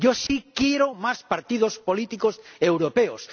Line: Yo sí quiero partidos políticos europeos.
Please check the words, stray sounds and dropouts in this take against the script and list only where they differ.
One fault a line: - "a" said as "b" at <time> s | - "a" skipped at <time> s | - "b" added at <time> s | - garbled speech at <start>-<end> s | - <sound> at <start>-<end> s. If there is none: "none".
- dropout at 0.3-0.3 s
- "más" added at 0.9 s